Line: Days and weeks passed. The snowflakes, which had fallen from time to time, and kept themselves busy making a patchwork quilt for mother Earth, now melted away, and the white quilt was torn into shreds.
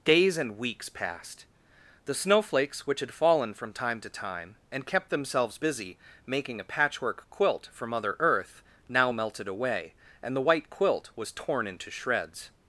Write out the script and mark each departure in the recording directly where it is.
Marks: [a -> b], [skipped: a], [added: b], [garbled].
Days and weeks passed. The snowflakes, which had fallen from time to time, and kept themselves busy making a patchwork quilt for mother Earth, now melted away, and the white quilt was torn into shreds.